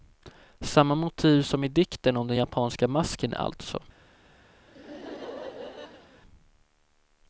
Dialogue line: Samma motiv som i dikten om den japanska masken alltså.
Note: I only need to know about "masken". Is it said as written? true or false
true